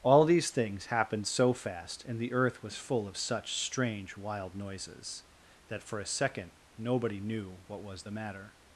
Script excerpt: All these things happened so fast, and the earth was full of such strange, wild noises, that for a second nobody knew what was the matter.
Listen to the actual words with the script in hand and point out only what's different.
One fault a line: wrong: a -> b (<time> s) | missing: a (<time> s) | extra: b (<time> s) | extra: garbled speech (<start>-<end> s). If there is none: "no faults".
no faults